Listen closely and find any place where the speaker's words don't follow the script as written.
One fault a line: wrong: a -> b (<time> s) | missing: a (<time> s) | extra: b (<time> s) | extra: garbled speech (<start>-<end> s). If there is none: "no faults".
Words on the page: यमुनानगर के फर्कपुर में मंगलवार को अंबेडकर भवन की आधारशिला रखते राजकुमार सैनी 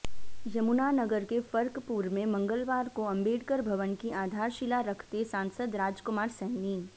extra: सांसद (5.3 s)